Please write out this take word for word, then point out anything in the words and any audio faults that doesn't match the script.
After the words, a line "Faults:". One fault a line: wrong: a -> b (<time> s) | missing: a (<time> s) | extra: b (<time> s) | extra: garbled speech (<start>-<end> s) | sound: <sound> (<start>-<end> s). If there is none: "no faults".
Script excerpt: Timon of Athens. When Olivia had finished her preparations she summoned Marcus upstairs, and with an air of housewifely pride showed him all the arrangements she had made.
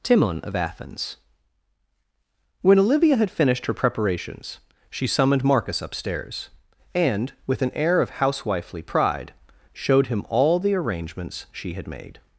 Timon of Athens. When Olivia had finished her preparations she summoned Marcus upstairs, and with an air of housewifely pride showed him all the arrangements she had made.
Faults:
no faults